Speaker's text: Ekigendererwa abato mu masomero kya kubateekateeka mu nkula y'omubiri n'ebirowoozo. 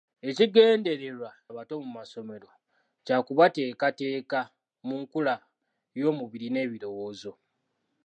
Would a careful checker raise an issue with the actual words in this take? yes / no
no